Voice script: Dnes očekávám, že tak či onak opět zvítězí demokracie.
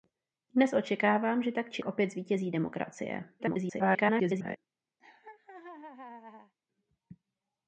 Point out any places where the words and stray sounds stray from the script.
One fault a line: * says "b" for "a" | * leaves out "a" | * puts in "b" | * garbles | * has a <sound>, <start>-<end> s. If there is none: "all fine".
* leaves out "onak"
* garbles
* has a laugh, 5.0-6.5 s